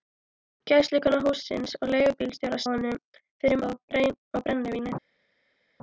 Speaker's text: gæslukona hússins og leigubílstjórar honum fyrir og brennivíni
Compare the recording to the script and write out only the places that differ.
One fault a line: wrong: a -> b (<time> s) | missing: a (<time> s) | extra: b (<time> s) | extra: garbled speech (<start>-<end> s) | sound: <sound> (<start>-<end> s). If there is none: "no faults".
no faults